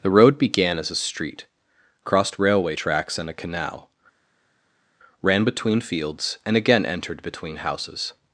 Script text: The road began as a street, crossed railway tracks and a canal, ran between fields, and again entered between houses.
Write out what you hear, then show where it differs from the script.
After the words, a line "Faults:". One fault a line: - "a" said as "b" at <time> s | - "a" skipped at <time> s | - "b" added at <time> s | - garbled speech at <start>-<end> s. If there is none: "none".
The road began as a street, crossed railway tracks and a canal, ran between fields, and again entered between houses.
Faults:
none